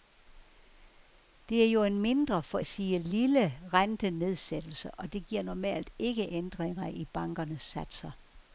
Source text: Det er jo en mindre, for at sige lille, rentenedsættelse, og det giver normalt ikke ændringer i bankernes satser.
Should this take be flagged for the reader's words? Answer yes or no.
no